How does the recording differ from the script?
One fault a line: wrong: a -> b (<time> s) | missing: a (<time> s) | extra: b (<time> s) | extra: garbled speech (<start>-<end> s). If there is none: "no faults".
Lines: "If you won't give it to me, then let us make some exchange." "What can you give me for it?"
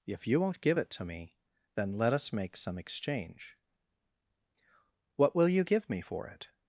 wrong: can -> will (5.3 s)